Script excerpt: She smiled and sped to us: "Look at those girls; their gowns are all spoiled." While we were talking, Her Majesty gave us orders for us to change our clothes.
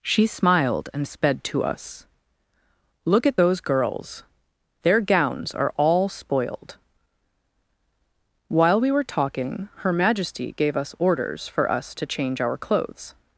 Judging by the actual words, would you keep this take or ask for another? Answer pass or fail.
pass